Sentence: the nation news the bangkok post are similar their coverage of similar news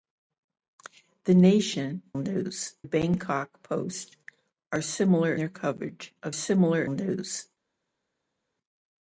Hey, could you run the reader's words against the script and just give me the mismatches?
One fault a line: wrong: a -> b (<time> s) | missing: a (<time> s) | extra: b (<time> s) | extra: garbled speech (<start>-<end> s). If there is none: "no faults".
no faults